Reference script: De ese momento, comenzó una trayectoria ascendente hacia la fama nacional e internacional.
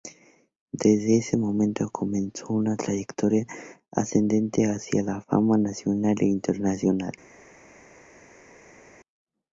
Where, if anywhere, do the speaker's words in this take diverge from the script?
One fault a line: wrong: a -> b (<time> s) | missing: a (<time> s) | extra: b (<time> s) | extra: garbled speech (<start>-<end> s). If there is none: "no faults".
wrong: De -> Desde (0.7 s)